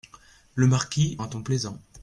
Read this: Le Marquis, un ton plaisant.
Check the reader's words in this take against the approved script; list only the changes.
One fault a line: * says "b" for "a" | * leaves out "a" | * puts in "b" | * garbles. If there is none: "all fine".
all fine